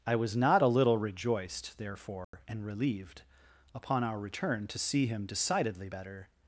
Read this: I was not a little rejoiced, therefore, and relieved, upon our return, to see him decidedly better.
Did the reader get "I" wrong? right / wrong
right